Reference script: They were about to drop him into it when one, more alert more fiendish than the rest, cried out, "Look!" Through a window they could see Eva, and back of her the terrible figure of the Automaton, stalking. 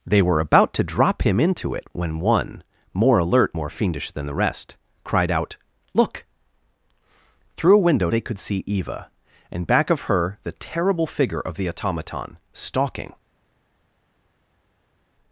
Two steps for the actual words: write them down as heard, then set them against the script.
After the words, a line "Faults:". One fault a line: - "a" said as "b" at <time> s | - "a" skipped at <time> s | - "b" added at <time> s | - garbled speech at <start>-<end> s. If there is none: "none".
They were about to drop him into it when one, more alert more fiendish than the rest, cried out, "Look!" Through a window they could see Eva, and back of her the terrible figure of the Automaton, stalking.
Faults:
none